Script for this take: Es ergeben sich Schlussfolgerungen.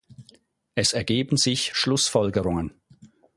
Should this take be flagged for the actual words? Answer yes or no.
no